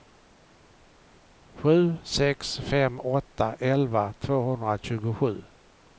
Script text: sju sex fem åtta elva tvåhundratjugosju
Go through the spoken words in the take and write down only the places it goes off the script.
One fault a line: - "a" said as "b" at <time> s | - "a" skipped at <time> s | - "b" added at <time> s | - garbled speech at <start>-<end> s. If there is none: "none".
none